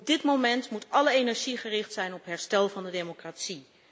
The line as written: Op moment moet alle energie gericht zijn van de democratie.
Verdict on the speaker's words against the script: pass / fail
fail